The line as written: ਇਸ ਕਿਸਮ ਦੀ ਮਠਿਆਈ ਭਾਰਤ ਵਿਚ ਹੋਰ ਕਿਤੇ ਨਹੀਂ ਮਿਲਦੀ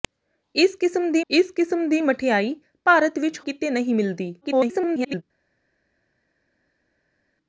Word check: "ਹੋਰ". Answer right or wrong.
wrong